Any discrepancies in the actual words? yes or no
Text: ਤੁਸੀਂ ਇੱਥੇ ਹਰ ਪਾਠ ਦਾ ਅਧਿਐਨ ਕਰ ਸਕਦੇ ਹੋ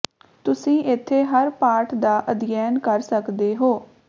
no